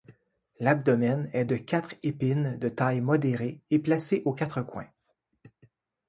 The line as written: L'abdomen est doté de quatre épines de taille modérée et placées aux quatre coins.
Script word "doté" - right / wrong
wrong